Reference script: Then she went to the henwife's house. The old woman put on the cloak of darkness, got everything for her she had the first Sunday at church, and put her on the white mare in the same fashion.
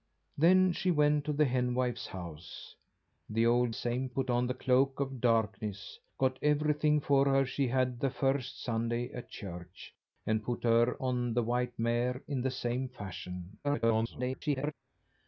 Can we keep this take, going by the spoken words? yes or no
no